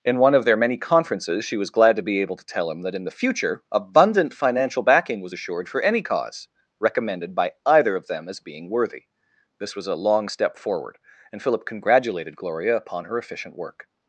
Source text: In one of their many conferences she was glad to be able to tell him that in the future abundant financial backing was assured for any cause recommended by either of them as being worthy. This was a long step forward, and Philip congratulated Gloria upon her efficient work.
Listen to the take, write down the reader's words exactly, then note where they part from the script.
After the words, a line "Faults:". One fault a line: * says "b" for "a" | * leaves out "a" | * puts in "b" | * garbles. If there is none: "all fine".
In one of their many conferences she was glad to be able to tell him that in the future abundant financial backing was assured for any cause recommended by either of them as being worthy. This was a long step forward, and Philip congratulated Gloria upon her efficient work.
Faults:
all fine